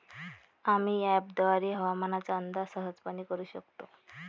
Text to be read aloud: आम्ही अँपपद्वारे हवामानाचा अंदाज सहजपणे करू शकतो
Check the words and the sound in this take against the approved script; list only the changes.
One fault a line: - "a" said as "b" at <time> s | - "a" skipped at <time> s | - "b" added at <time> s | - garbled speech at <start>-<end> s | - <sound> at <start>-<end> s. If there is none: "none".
none